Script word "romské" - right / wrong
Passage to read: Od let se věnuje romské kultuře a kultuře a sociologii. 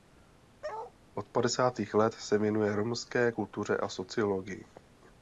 right